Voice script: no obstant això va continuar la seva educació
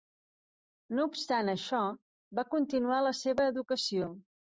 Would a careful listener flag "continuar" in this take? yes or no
no